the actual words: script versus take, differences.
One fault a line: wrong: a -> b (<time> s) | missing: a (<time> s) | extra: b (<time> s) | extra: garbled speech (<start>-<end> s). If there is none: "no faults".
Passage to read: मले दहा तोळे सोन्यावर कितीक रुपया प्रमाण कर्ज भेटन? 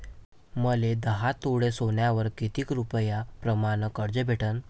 no faults